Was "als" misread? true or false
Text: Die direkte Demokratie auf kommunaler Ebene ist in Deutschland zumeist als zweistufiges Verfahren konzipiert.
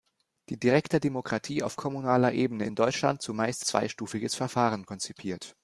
true